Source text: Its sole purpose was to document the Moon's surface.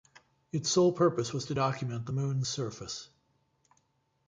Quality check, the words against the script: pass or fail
pass